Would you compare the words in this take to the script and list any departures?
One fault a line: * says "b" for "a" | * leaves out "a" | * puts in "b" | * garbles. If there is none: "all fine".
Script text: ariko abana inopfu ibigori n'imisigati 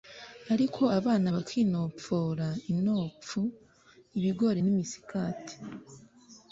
* puts in "bakinopfora"